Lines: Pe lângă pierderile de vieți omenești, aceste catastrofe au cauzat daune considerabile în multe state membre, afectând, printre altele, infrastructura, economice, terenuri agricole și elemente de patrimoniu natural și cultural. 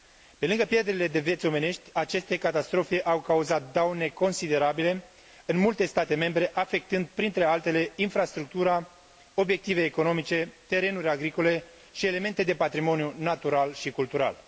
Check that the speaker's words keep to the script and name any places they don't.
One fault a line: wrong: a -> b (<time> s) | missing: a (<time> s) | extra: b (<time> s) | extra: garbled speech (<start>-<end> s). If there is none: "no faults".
extra: obiective (9.3 s)